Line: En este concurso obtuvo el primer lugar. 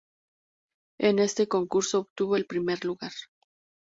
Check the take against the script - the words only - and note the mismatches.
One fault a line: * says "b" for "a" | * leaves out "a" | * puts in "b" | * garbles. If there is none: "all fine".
all fine